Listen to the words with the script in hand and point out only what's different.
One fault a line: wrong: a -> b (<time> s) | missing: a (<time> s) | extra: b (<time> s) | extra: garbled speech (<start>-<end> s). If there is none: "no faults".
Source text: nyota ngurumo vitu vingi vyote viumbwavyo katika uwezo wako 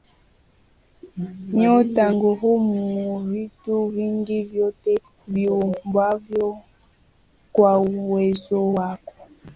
wrong: katika -> kwa (7.5 s)